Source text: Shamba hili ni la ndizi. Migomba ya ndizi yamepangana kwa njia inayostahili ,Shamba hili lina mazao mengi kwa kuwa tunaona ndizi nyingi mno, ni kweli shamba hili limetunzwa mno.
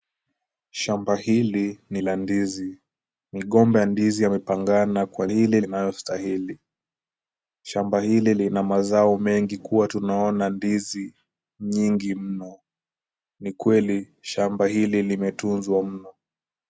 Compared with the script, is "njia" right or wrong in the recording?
wrong